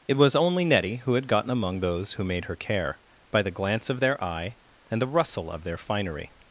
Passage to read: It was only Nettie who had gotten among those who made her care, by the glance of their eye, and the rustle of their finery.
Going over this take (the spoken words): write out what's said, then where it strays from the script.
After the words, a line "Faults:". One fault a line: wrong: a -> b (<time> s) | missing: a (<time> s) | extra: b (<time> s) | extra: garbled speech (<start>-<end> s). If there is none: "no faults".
It was only Nettie who had gotten among those who made her care, by the glance of their eye, and the rustle of their finery.
Faults:
no faults